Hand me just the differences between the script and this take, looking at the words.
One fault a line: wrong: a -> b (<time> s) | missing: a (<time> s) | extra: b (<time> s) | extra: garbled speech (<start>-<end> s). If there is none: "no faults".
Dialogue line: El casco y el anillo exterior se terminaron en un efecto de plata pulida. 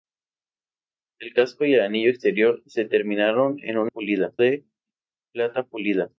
wrong: efecto -> pulida (3.9 s)